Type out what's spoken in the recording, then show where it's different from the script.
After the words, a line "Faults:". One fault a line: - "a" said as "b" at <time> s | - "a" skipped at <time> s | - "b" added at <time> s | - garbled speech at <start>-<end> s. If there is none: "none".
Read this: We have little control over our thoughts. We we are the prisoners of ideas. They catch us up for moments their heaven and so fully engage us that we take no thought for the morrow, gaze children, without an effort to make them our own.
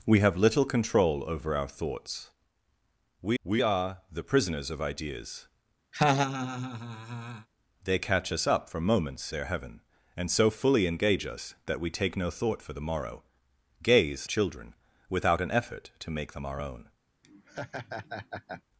We have little control over our thoughts. We we are the prisoners of ideas. They catch us up for moments their heaven and so fully engage us that we take no thought for the morrow, gaze children, without an effort to make them our own.
Faults:
none